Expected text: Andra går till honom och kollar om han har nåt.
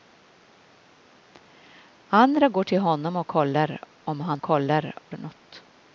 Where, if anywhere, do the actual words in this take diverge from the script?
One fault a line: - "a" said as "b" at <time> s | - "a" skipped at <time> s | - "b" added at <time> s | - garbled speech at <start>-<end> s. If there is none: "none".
- "har" said as "kollar" at 4.4 s